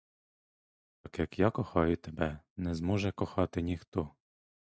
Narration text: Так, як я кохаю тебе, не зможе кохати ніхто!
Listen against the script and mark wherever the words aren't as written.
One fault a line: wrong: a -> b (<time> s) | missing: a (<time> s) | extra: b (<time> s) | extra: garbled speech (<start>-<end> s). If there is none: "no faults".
no faults